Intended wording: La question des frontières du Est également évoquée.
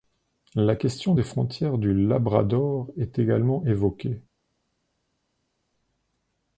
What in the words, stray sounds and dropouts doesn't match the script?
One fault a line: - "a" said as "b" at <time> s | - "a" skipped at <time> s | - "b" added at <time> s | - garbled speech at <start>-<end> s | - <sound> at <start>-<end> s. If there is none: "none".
- "Labrador" added at 1.9 s